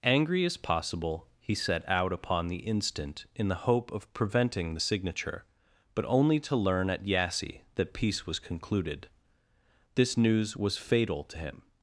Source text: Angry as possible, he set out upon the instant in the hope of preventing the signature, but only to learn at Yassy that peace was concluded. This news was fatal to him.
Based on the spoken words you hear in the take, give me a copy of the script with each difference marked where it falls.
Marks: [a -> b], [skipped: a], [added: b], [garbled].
Angry as possible, he set out upon the instant in the hope of preventing the signature, but only to learn at Yassy that peace was concluded. This news was fatal to him.